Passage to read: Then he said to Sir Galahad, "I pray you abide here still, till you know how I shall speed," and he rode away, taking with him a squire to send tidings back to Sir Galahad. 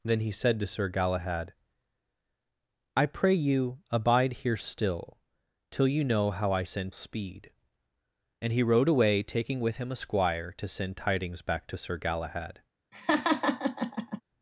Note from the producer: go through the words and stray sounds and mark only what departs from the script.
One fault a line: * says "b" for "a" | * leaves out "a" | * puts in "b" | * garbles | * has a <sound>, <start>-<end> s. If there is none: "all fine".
* says "send" for "shall"
* has a laugh, 12.9-14.2 s